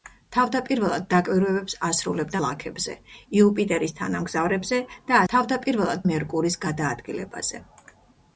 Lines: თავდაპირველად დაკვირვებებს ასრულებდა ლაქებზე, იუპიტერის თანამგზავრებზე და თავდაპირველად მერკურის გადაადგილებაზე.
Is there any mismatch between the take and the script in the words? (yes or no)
no